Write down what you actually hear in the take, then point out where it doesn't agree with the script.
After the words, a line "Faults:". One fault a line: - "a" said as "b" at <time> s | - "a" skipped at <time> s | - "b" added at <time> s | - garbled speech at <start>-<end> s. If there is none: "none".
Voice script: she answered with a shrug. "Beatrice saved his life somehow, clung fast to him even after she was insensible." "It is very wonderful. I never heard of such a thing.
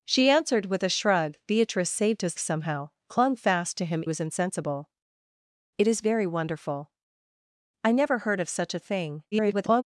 she answered with a shrug. "Beatrice saved his somehow, clung fast to him was insensible." "It is very wonderful. I never heard of such a thing. [garbled]
Faults:
- "life" skipped at 2.4 s
- "even after she" skipped at 4.0 s
- garbled speech at 9.3-9.8 s